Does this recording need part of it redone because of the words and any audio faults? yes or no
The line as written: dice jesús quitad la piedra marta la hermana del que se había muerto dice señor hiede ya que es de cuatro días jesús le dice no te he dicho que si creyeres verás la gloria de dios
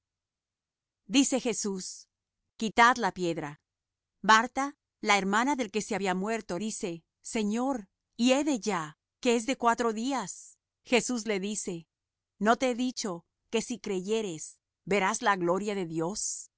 no